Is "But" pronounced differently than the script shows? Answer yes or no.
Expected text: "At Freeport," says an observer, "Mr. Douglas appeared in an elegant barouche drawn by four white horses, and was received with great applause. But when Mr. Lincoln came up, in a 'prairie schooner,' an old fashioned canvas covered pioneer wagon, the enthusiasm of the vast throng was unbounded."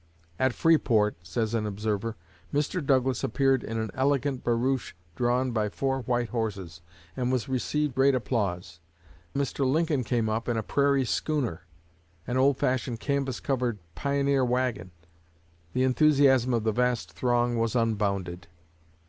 yes